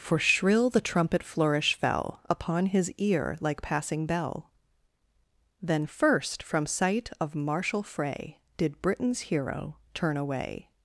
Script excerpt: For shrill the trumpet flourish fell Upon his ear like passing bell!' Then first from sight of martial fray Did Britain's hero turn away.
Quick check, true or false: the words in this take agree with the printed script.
true